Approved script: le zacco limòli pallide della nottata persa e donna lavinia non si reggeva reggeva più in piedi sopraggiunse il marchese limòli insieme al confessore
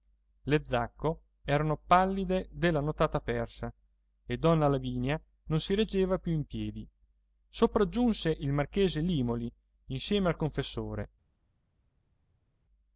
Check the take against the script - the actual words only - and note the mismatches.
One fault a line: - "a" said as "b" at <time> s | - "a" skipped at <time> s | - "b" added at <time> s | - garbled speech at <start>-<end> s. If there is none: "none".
- "limòli" said as "erano" at 1.4 s
- "reggeva" skipped at 6.2 s